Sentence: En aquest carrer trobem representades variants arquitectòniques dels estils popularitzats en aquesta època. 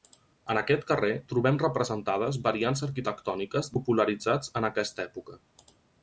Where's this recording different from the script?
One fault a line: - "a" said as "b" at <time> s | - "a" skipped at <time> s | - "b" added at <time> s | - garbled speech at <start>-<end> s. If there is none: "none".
- "dels estils" skipped at 3.7 s